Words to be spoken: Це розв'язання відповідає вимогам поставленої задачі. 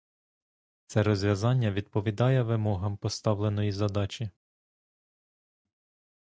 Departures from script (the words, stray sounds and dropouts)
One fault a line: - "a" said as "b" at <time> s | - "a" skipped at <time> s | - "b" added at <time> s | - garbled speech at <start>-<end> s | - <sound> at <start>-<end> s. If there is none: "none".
none